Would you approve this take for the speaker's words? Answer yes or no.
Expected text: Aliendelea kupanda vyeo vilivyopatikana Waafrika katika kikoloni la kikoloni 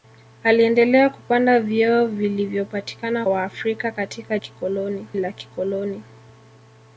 yes